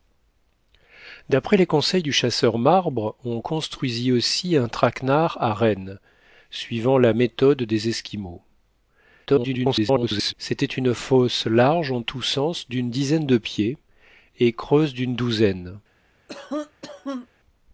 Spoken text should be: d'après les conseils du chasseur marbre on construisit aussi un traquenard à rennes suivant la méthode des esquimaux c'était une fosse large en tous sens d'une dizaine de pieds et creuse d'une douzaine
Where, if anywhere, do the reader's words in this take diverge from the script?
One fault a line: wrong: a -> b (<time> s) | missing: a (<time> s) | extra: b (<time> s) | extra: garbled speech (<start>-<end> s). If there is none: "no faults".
extra: garbled speech (9.3-10.3 s)